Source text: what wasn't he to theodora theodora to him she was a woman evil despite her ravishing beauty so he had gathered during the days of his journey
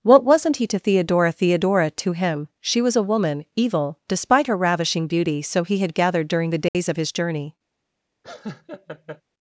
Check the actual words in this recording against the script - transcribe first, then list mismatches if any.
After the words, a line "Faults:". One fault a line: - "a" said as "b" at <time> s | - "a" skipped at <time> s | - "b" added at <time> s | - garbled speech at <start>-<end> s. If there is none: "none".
what wasn't he to theodora theodora to him she was a woman evil despite her ravishing beauty so he had gathered during the days of his journey
Faults:
none